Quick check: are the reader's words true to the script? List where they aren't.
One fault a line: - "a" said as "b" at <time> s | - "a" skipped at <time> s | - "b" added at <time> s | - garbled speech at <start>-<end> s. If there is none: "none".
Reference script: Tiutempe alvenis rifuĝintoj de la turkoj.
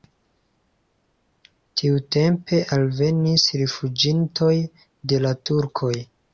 none